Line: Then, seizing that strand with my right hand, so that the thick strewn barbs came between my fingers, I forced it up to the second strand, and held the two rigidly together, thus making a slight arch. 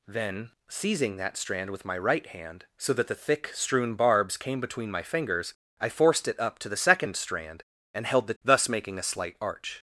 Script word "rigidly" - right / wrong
wrong